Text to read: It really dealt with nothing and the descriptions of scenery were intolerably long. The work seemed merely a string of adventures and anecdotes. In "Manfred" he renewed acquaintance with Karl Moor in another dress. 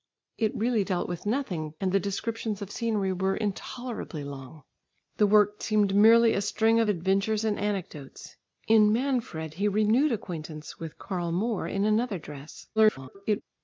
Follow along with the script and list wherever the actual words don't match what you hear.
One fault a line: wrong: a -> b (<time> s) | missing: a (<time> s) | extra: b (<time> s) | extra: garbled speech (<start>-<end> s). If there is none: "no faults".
extra: garbled speech (12.8-13.4 s)